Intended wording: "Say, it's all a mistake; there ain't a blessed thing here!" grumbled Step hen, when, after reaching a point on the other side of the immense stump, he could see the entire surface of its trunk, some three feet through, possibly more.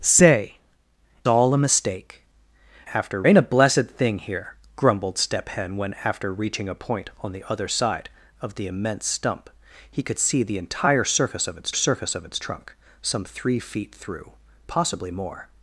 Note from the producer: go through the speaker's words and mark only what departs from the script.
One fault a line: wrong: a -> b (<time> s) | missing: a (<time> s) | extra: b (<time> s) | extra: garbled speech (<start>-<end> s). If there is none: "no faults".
missing: it's (0.6 s)
wrong: there -> after (2.9 s)
extra: surface of its (11.7 s)